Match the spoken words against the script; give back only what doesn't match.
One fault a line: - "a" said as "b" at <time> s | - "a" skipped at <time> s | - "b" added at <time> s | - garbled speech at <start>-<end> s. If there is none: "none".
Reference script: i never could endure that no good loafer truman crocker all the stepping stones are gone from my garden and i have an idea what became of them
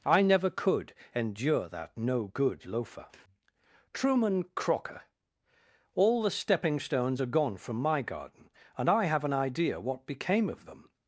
none